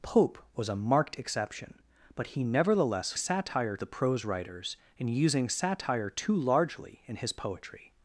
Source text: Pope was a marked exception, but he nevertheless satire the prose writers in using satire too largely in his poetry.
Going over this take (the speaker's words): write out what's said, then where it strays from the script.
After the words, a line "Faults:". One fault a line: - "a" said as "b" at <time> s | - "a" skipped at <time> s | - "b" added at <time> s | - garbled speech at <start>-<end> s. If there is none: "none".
Pope was a marked exception, but he nevertheless satire the prose writers in using satire too largely in his poetry.
Faults:
none